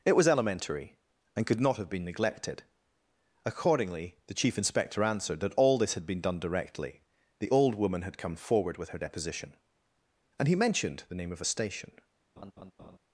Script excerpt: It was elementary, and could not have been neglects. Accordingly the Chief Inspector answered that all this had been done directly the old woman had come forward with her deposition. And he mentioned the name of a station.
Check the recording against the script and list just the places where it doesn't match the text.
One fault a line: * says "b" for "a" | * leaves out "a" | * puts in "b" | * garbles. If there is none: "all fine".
* says "neglected" for "neglects"